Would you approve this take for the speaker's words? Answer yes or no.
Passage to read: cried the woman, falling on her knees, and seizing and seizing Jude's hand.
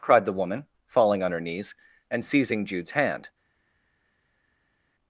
no